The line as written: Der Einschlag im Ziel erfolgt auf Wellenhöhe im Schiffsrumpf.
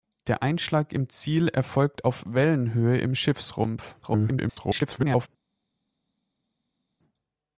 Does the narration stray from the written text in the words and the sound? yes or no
yes